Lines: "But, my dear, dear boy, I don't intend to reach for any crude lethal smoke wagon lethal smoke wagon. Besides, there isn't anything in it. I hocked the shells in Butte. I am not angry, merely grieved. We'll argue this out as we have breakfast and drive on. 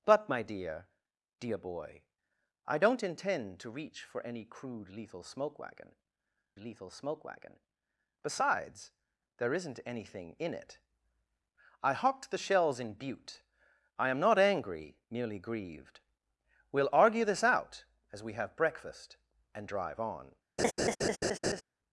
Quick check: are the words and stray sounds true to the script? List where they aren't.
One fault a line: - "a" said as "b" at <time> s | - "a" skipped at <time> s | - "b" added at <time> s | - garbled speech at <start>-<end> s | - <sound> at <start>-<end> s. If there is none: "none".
- laugh at 20.6-21.6 s